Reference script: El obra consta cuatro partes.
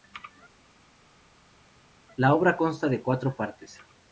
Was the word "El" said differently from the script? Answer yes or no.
yes